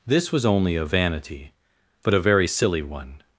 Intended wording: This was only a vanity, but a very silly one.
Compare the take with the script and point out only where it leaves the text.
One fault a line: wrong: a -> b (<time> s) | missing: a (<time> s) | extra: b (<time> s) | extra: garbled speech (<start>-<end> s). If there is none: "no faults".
no faults